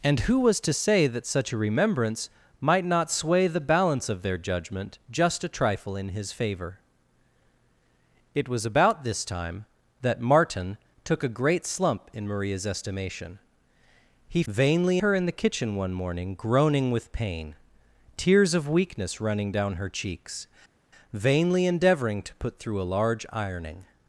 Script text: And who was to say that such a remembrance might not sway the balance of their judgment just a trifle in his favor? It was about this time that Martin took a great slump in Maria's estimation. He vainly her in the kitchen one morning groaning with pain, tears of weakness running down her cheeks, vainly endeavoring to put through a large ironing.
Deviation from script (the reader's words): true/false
false